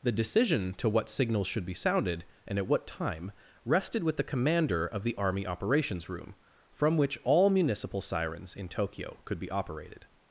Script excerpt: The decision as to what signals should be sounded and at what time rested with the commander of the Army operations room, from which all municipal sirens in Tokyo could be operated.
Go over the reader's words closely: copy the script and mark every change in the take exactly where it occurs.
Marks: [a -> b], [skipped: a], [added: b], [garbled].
The decision [skipped: as] to what signals should be sounded and at what time rested with the commander of the Army operations room, from which all municipal sirens in Tokyo could be operated.